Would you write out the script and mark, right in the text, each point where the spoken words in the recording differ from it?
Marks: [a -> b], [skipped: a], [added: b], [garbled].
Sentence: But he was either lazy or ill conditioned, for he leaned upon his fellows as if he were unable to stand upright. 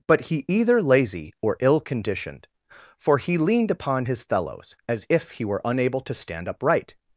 But he [skipped: was] either lazy or ill conditioned, for he leaned upon his fellows as if he were unable to stand upright.